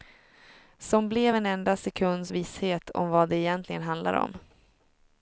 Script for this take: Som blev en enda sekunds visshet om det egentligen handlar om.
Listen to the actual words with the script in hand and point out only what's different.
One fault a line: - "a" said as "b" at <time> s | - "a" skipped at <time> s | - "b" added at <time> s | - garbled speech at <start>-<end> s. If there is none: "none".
- "vad" added at 3.1 s